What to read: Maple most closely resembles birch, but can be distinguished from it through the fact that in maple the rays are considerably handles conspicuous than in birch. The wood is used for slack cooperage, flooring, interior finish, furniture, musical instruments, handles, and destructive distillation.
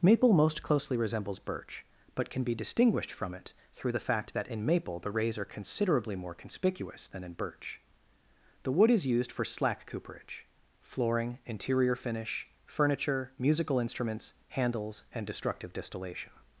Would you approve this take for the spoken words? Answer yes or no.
no